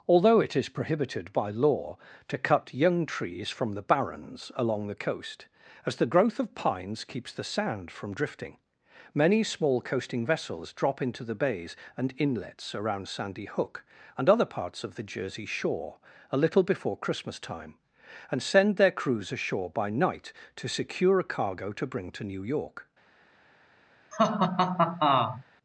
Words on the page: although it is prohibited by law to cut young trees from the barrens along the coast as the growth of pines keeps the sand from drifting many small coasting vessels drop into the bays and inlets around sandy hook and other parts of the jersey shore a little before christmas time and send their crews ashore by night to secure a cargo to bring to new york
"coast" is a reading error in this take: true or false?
false